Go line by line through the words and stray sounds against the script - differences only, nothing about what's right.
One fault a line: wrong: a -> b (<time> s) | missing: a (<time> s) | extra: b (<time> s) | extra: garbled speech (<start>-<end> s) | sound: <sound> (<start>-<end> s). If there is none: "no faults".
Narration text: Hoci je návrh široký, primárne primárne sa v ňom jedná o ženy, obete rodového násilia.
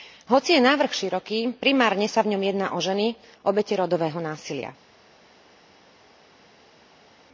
missing: primárne (2.0 s)